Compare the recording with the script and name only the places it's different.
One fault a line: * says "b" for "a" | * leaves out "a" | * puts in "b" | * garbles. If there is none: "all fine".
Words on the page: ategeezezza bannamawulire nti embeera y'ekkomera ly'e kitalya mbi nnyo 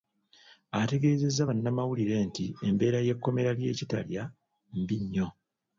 all fine